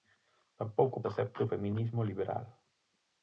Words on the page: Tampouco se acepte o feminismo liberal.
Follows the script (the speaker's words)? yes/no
yes